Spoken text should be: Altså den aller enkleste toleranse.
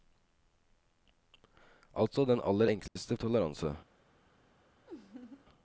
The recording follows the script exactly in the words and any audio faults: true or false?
false